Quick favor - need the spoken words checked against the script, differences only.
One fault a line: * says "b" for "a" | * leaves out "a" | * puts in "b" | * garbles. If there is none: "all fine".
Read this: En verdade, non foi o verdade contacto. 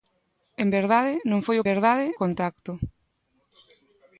all fine